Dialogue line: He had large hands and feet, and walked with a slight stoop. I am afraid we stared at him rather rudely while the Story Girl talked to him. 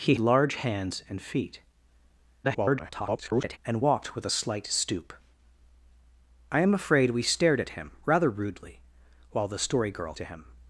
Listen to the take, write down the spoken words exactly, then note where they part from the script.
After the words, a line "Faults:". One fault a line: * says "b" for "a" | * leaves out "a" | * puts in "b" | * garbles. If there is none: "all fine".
He large hands and feet, [garbled] and walked with a slight stoop. I am afraid we stared at him rather rudely while the Story Girl to him.
Faults:
* leaves out "had"
* garbles
* leaves out "talked"